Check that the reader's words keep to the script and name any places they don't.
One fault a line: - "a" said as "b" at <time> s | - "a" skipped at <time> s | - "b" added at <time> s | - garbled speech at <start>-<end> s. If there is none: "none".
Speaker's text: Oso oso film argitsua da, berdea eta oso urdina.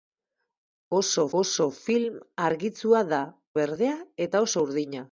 none